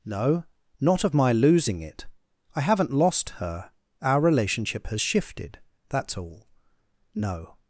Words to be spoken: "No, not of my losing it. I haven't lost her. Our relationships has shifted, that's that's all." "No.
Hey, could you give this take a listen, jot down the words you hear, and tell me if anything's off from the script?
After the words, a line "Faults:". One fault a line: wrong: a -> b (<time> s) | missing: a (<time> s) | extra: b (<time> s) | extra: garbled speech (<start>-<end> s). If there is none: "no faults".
"No, not of my losing it. I haven't lost her. Our relationship has shifted, that's all." "No.
Faults:
wrong: relationships -> relationship (4.2 s)
missing: that's (6.2 s)